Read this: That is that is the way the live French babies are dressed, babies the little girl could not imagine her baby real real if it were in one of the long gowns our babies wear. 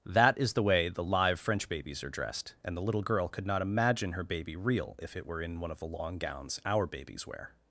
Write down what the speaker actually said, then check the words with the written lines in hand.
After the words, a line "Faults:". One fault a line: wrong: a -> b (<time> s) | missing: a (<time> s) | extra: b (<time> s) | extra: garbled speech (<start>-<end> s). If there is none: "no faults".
That is the way the live French babies are dressed, and the little girl could not imagine her baby real if it were in one of the long gowns our babies wear.
Faults:
missing: that is (0.5 s)
wrong: babies -> and (2.6 s)
missing: real (5.0 s)